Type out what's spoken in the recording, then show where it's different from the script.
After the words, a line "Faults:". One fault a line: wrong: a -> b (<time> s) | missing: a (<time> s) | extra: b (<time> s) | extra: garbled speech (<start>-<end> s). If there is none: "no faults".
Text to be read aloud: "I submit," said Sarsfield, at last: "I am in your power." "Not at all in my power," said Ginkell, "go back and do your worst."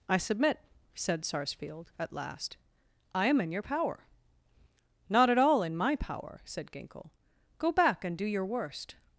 "I submit," said Sarsfield, at last: "I am in your power." "Not at all in my power," said Ginkell, "go back and do your worst."
Faults:
no faults